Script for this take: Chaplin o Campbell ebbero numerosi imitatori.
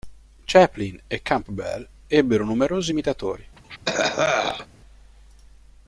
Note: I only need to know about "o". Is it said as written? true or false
false